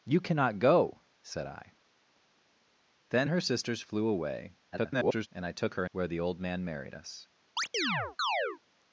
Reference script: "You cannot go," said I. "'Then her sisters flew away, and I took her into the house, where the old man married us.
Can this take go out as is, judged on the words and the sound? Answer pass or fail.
fail